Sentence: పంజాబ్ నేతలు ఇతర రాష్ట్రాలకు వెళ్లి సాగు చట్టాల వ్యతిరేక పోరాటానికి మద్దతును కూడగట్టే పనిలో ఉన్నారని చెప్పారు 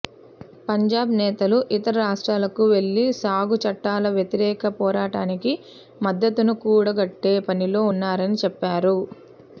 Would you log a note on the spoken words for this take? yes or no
no